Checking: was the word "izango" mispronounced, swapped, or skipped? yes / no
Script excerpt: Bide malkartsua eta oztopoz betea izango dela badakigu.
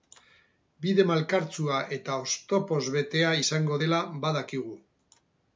no